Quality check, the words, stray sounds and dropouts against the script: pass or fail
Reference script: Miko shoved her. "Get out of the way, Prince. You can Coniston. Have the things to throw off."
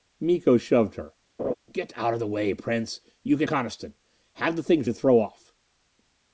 fail